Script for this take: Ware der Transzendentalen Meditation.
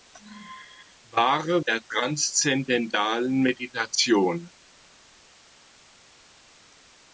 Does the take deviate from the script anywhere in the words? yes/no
no